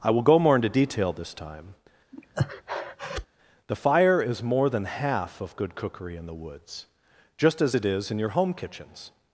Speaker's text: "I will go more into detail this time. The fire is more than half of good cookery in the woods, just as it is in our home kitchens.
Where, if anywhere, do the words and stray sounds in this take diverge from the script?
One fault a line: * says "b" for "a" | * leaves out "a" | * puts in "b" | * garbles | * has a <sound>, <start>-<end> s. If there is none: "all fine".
* has a breath, 2.1-3.3 s
* says "your" for "our"